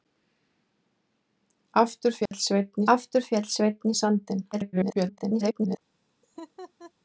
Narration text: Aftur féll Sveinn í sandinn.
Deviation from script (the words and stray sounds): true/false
true